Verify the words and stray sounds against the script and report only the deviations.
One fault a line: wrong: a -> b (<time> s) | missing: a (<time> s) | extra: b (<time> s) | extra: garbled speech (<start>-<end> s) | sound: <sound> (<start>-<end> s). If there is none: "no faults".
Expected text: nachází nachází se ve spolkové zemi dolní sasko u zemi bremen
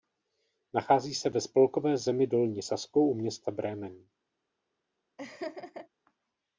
missing: nachází (1.1 s)
wrong: zemi -> města (3.1 s)
sound: laugh (5.2-5.9 s)